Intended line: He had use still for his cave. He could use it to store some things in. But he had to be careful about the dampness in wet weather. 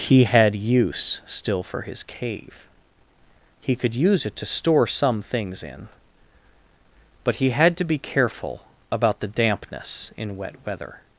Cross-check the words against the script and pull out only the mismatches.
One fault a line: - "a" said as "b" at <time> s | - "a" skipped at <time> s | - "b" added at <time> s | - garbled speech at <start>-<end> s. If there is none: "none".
none